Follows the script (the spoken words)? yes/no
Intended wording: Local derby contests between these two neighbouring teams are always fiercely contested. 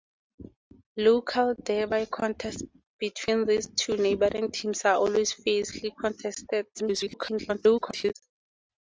no